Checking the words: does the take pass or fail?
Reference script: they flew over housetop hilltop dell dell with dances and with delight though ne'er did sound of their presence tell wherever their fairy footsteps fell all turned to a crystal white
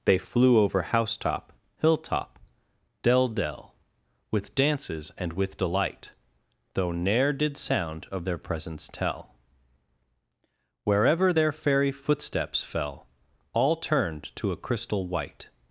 pass